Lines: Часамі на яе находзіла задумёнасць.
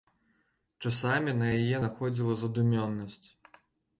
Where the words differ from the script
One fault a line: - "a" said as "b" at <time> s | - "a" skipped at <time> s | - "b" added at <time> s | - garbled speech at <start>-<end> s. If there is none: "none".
none